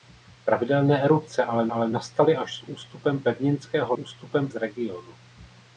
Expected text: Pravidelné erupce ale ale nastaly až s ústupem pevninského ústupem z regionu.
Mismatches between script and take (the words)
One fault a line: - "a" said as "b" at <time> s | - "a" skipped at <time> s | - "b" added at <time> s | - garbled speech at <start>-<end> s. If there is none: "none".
none